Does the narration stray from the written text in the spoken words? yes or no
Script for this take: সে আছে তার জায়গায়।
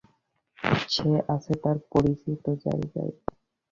yes